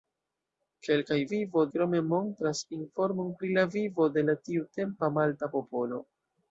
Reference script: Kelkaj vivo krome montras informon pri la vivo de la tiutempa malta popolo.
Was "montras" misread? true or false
false